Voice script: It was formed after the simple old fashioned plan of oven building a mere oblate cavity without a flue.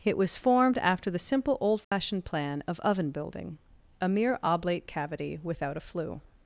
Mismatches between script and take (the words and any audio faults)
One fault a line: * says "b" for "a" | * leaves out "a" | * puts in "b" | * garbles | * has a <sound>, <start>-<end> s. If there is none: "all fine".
* has a dropout, 1.8-1.9 s